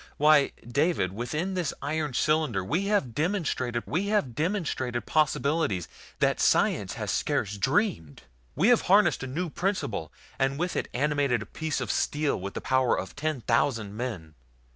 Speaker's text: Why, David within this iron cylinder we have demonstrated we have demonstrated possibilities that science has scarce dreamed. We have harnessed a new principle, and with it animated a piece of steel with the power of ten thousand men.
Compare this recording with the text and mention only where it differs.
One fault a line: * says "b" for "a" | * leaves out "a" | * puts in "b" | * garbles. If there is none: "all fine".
all fine